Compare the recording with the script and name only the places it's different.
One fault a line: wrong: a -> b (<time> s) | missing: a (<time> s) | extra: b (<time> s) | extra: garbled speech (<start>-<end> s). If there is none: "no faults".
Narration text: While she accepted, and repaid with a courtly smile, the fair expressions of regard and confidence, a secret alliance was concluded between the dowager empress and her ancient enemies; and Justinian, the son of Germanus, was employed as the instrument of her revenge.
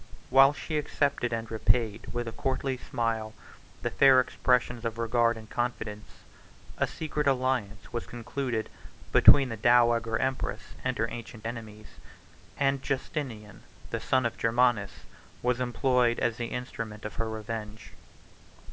no faults